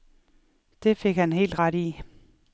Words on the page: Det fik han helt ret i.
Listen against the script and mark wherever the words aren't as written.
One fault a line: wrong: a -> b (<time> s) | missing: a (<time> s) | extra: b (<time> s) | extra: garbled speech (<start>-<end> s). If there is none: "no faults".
no faults